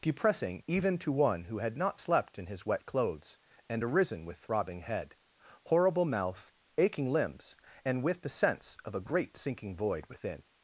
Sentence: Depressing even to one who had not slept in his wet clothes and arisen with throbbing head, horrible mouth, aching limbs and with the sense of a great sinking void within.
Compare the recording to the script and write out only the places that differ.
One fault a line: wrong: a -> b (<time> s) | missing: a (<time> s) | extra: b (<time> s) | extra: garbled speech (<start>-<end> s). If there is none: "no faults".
no faults